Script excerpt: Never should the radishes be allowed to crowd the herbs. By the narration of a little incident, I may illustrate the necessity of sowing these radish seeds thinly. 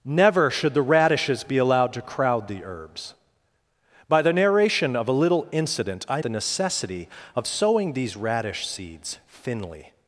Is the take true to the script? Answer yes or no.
no